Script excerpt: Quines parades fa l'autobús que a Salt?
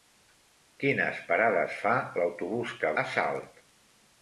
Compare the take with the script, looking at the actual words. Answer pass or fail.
pass